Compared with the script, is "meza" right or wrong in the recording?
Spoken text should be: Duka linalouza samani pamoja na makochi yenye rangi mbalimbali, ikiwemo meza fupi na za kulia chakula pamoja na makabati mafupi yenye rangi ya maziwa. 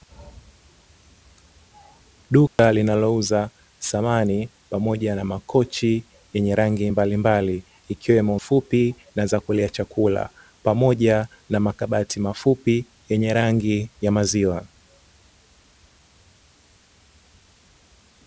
wrong